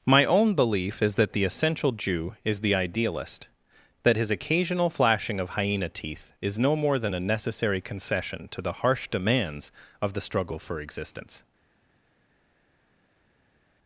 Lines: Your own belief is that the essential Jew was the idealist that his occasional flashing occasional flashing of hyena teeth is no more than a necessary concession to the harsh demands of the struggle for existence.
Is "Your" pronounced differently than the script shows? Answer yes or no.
yes